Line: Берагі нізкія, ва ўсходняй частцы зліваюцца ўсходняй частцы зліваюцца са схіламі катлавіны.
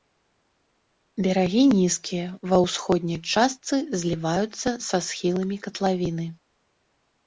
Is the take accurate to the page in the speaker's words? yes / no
no